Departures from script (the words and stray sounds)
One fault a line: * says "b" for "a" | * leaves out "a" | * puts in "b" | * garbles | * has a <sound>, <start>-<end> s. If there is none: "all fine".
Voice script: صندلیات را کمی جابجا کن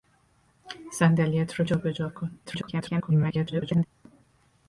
* leaves out "کمی"
* garbles